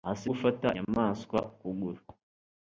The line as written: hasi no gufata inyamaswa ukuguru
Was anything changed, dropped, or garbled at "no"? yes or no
yes